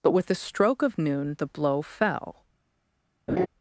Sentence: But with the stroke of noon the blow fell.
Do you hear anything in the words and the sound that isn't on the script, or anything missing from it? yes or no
yes